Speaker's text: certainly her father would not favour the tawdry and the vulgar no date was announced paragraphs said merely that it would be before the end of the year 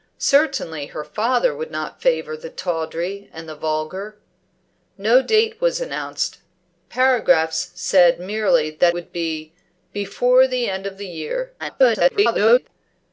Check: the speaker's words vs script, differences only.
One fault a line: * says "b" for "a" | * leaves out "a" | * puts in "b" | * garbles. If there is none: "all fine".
* leaves out "it"
* garbles